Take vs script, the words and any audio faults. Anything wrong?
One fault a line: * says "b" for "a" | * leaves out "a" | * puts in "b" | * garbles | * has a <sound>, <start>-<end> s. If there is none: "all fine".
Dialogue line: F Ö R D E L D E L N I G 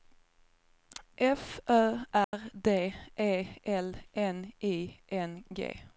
* has a dropout, 2.2-2.3 s
* says "N I" for "D E L"
* leaves out "I"